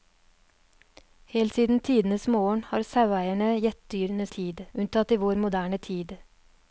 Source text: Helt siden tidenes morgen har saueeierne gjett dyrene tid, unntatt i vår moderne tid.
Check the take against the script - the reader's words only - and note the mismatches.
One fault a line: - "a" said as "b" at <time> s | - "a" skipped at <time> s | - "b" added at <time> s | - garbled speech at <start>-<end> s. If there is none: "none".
none